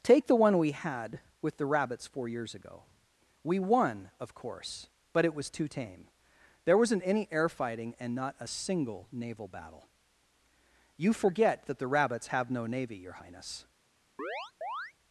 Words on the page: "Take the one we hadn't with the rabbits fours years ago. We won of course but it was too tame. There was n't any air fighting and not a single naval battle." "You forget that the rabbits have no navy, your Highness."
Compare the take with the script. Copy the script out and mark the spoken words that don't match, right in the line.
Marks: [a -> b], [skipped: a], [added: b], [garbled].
"Take the one we [hadn't -> had] with the rabbits [fours -> four] years ago. We won of course but it was too tame. There was n't any air fighting and not a single naval battle." "You forget that the rabbits have no navy, your Highness."